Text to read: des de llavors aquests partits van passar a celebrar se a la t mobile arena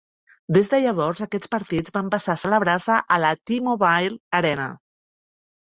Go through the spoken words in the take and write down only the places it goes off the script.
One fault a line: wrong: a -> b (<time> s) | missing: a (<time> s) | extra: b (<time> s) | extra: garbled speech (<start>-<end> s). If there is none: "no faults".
no faults